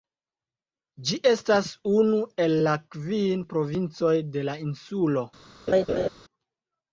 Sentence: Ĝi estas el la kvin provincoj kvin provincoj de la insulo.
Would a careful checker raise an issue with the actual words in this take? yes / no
yes